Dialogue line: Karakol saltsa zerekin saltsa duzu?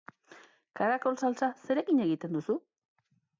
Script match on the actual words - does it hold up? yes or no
no